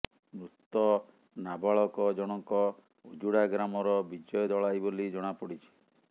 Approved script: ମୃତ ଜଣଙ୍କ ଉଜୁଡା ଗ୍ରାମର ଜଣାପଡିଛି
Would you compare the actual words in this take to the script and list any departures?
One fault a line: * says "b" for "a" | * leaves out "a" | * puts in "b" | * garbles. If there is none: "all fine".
* puts in "ନାବାଳକ"
* puts in "ବିଜୟ ଦଳାଇ ବୋଲି"